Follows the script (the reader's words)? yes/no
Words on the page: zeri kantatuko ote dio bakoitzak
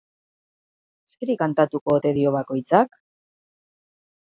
yes